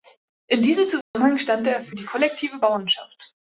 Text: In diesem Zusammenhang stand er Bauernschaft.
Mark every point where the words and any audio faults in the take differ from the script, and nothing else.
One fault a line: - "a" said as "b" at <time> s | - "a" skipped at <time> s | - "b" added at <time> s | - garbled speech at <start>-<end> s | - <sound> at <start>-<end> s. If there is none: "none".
- dropout at 1.0-1.1 s
- "für die kollektive" added at 1.8 s